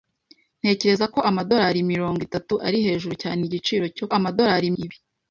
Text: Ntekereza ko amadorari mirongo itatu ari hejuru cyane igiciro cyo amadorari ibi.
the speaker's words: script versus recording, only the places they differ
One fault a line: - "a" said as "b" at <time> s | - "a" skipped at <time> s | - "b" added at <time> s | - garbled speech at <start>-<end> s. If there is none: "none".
none